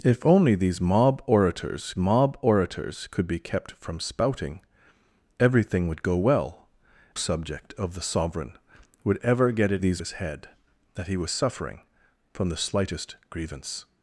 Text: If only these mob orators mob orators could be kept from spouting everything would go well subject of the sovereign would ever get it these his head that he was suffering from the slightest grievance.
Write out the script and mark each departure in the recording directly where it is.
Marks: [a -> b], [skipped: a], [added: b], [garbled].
If only these mob orators mob orators could be kept from spouting everything would go well subject of the sovereign would ever get it these his head that he was suffering from the slightest grievance.